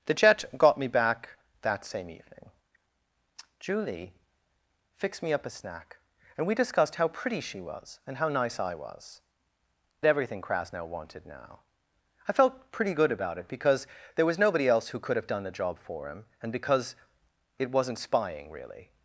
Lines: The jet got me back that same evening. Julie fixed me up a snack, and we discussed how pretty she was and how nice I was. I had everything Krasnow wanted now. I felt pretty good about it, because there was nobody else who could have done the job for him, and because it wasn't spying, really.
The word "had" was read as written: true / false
false